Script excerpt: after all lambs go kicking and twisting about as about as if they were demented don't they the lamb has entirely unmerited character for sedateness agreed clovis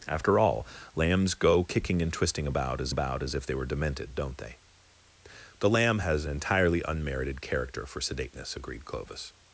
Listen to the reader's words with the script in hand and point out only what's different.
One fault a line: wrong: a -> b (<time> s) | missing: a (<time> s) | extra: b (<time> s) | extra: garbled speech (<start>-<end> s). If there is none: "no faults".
no faults